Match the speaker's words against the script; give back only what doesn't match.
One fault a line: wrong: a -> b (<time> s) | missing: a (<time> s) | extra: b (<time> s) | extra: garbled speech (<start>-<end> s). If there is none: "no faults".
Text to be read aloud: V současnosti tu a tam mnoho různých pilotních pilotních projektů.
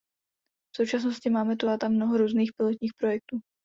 extra: máme (1.3 s)
missing: pilotních (2.9 s)